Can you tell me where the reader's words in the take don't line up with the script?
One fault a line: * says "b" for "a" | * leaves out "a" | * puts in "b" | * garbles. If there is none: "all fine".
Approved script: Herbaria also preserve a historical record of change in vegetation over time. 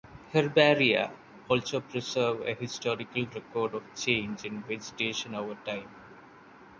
all fine